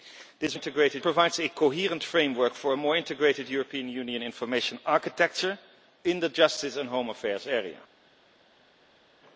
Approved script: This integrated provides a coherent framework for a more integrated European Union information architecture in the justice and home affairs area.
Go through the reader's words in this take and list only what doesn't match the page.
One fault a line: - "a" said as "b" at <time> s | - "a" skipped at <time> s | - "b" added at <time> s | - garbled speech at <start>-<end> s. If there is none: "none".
none